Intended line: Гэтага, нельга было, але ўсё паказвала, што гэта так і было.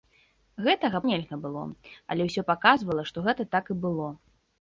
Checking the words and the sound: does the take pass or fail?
pass